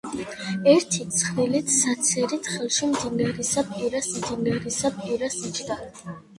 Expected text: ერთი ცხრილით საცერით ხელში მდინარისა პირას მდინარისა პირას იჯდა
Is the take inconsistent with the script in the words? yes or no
no